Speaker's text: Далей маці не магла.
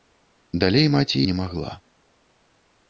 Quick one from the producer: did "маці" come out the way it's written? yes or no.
yes